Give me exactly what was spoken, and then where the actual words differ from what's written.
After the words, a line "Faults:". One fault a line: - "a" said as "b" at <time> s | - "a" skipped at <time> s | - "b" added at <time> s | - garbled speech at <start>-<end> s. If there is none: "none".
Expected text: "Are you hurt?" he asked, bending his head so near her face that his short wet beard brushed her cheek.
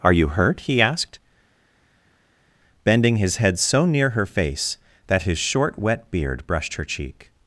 "Are you hurt?" he asked, bending his head so near her face that his short wet beard brushed her cheek.
Faults:
none